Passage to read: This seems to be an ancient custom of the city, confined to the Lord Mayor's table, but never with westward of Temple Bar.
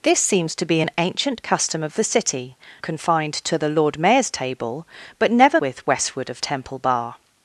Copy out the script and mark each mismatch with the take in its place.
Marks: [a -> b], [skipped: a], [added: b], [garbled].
This seems to be an ancient custom of the city, confined to the Lord Mayor's table, but never with westward of Temple Bar.